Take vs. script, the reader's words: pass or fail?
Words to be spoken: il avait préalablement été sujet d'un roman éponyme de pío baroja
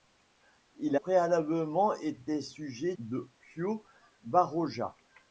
fail